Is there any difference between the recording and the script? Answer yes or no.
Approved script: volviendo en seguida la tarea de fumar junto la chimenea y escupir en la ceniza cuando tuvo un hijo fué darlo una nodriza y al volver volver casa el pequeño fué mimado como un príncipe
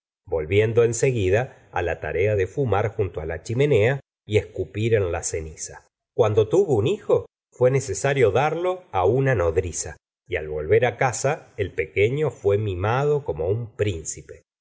yes